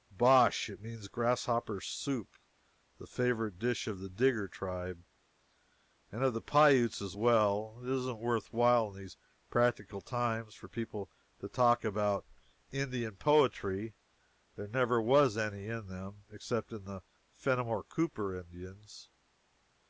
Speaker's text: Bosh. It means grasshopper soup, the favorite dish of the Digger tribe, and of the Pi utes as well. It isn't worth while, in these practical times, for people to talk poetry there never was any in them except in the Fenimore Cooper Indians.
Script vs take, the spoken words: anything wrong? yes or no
yes